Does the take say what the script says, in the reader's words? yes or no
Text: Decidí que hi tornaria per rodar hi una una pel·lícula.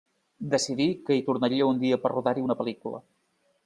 no